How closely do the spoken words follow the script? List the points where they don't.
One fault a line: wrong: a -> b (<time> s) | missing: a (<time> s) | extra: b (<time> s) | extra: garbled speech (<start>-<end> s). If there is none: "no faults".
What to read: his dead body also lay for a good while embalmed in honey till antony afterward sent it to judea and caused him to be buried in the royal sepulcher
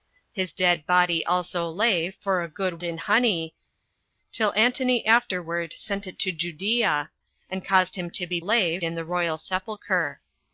missing: while embalmed (2.8 s)
wrong: buried -> lay (8.4 s)